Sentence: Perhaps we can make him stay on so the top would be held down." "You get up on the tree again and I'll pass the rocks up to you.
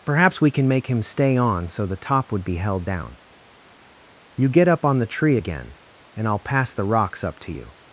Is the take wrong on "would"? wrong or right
right